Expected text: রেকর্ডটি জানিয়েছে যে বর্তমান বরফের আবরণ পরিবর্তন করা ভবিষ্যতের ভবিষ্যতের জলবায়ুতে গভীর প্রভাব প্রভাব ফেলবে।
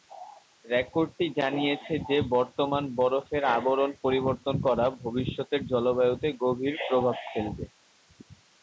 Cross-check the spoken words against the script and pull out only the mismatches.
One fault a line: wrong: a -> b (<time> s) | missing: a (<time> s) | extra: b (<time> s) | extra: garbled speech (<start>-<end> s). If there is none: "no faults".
missing: ভবিষ্যতের (5.6 s)
missing: প্রভাব (7.2 s)